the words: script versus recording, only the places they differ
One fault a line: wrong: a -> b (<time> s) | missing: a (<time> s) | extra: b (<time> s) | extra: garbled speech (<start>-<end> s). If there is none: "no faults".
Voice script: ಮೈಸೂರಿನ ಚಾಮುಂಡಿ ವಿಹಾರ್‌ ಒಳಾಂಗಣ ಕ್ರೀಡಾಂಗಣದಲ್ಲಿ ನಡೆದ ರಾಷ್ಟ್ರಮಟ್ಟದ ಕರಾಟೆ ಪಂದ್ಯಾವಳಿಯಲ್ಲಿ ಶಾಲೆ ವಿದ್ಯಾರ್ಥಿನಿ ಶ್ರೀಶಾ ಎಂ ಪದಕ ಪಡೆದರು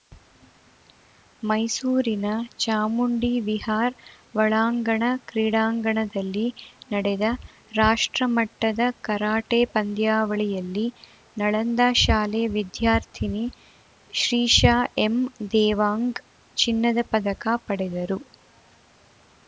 extra: ನಳಂದ (11.4 s)
extra: ದೇವಾಂಗ್ ಚಿನ್ನದ (15.5 s)